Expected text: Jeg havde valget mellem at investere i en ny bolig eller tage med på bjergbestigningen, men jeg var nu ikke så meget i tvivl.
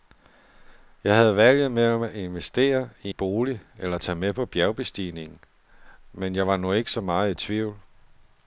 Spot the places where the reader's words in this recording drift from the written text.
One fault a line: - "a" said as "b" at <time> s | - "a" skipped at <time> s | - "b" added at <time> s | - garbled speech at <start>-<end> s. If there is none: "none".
- "en ny" skipped at 3.1 s